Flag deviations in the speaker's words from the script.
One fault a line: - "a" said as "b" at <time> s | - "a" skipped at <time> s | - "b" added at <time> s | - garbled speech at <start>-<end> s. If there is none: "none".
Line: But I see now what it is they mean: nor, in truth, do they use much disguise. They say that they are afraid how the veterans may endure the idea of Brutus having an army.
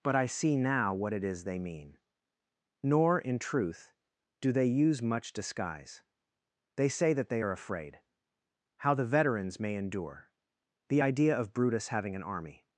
none